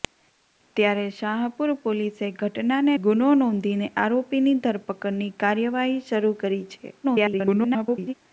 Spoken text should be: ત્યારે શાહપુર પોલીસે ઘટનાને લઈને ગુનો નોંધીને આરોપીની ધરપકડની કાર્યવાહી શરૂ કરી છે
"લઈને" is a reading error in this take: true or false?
true